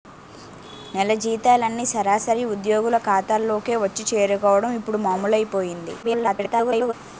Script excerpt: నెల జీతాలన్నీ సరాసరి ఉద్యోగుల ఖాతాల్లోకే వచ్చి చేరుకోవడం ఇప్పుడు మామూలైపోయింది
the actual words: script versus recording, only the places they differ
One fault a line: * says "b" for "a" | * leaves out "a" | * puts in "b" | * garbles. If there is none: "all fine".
* garbles